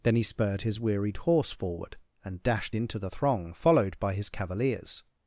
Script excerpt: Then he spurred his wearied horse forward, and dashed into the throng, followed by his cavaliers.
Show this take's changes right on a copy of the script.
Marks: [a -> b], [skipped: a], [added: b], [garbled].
Then he spurred his wearied horse forward, and dashed into the throng, followed by his cavaliers.